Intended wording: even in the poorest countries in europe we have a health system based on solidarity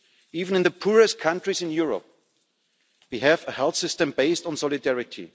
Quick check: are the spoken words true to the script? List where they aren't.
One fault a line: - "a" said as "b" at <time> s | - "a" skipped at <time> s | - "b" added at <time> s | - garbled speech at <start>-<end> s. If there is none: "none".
none